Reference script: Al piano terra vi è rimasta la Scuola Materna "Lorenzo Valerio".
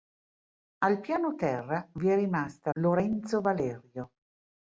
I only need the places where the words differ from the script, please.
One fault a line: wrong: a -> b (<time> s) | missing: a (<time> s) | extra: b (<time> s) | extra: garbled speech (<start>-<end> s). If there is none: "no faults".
missing: la Scuola Materna (2.7 s)